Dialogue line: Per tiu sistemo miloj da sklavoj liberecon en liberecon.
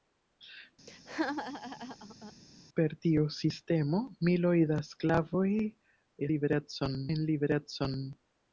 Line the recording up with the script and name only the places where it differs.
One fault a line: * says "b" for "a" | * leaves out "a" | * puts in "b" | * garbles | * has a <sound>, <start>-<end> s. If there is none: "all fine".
* has a laugh, 0.9-2.3 s